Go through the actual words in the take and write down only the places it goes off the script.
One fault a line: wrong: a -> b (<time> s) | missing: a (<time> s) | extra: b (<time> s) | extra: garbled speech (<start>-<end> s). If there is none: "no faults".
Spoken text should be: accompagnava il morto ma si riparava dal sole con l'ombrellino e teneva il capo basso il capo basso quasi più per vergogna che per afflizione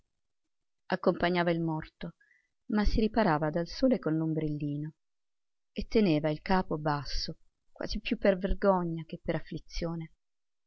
missing: il capo basso (7.4 s)